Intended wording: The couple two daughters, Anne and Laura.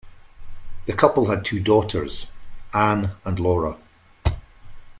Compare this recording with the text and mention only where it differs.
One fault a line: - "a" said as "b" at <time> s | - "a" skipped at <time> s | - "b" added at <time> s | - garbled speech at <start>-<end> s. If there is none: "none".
- "had" added at 1.3 s